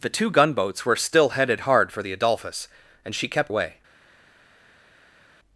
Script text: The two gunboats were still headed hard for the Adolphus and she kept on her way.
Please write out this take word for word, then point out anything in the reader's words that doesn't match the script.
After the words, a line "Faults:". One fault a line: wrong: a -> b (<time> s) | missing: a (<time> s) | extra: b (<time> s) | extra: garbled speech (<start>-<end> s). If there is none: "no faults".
The two gunboats were still headed hard for the Adolphus and she kept way.
Faults:
missing: on her (3.5 s)